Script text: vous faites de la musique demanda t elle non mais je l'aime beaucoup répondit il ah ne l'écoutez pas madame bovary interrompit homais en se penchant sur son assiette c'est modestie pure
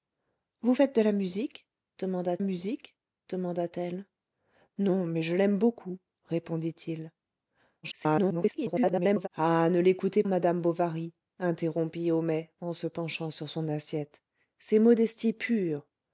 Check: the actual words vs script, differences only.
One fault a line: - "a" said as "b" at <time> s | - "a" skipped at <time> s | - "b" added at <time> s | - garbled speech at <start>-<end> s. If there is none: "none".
- "musique demanda" added at 2.4 s
- garbled speech at 7.8-9.3 s
- "pas" skipped at 10.2 s